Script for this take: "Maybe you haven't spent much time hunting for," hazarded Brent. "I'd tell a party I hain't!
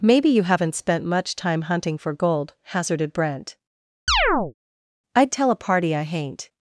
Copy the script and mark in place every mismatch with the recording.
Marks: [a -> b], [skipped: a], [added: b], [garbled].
"Maybe you haven't spent much time hunting for," [added: gold] hazarded Brent. "I'd tell a party I hain't!